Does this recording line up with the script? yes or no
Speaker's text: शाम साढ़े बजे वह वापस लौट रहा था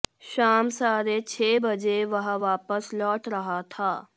no